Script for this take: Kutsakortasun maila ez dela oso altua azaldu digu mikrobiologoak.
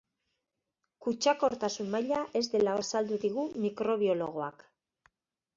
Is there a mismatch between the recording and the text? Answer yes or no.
yes